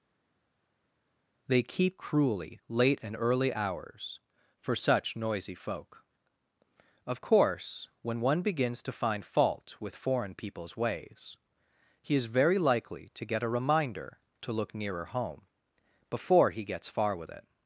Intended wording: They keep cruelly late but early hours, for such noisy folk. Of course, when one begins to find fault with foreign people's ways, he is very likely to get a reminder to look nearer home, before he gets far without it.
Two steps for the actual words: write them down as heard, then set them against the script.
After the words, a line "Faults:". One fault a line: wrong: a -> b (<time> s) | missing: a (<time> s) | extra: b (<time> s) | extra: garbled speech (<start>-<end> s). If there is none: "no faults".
They keep cruelly late and early hours, for such noisy folk. Of course, when one begins to find fault with foreign people's ways, he is very likely to get a reminder to look nearer home, before he gets far with it.
Faults:
wrong: but -> and (3.0 s)
wrong: without -> with (17.1 s)